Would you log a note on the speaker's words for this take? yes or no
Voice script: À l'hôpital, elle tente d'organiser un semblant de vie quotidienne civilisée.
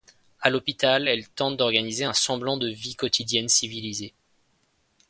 no